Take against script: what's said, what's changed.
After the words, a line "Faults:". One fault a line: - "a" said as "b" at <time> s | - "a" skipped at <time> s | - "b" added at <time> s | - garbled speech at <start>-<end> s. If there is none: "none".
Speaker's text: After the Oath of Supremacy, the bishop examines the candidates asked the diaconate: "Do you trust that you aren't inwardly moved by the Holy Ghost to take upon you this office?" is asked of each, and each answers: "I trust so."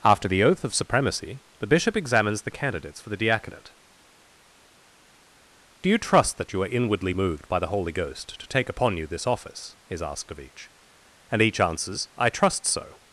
After the Oath of Supremacy, the bishop examines the candidates for the diaconate: "Do you trust that you are inwardly moved by the Holy Ghost to take upon you this office?" is asked of each, and each answers: "I trust so."
Faults:
- "asked" said as "for" at 3.0 s
- "aren't" said as "are" at 6.6 s